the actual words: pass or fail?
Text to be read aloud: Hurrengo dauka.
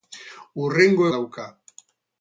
pass